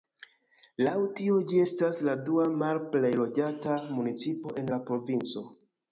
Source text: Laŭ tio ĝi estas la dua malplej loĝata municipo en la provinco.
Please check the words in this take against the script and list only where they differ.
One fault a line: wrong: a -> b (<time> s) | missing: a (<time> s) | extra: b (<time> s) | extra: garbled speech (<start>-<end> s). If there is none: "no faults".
no faults